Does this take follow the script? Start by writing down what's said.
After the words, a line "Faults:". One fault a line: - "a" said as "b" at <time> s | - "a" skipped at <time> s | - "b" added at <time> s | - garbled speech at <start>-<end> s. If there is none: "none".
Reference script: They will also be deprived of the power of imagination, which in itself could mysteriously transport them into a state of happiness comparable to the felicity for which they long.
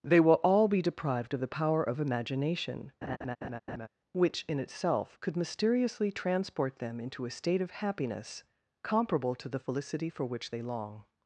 They will all be deprived of the power of imagination, which in itself could mysteriously transport them into a state of happiness comparable to the felicity for which they long.
Faults:
- "also" said as "all" at 0.4 s